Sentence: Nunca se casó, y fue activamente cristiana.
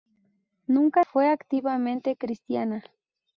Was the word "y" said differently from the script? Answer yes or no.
yes